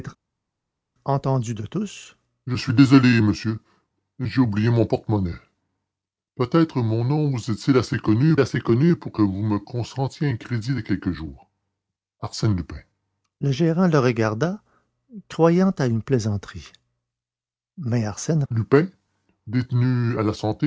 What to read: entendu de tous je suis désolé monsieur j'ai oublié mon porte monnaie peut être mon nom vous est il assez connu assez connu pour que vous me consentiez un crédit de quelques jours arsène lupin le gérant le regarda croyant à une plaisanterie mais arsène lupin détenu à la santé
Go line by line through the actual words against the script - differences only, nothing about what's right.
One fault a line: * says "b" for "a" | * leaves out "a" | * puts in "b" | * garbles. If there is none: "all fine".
all fine